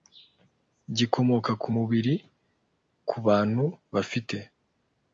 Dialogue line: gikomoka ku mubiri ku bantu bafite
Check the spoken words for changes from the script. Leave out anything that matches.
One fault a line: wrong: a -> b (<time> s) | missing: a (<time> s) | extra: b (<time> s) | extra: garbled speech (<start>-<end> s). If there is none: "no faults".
no faults